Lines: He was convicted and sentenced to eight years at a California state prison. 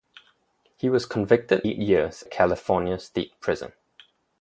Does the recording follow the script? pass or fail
fail